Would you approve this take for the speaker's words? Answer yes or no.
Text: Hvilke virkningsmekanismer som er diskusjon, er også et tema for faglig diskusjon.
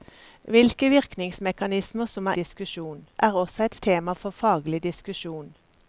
yes